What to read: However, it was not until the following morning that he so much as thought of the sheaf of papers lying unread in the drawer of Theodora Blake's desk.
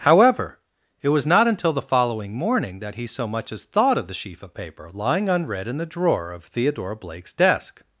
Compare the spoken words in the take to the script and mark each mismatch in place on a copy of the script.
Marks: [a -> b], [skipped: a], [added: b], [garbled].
However, it was not until the following morning that he so much as thought of the sheaf of [papers -> paper] lying unread in the drawer of Theodora Blake's desk.